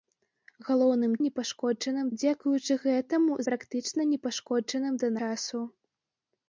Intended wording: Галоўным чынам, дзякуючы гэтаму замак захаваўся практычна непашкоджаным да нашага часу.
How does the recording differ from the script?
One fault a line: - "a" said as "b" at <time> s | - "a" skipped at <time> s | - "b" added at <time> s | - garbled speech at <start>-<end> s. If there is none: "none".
- "чынам" said as "непашкоджаным" at 1.2 s
- "замак захаваўся" skipped at 3.4 s
- "нашага" skipped at 5.1 s